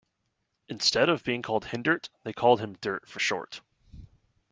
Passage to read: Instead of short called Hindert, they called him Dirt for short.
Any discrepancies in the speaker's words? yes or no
yes